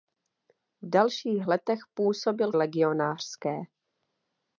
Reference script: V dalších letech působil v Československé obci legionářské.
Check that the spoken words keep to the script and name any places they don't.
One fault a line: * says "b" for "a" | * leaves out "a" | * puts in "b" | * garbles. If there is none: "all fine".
* leaves out "v Československé obci"